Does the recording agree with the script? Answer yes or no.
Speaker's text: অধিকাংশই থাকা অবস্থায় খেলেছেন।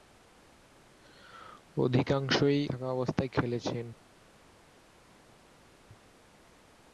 yes